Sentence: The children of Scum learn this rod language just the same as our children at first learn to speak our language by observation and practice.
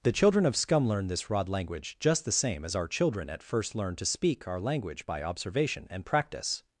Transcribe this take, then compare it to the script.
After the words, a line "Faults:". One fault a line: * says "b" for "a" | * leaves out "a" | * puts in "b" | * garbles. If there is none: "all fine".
The children of Scum learn this rod language just the same as our children at first learn to speak our language by observation and practice.
Faults:
all fine